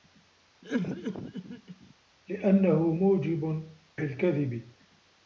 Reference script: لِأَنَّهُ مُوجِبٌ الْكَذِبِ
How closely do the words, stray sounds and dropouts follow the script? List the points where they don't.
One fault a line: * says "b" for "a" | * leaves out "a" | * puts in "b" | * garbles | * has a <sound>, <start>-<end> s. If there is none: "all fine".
* has a cough, 0.6-1.9 s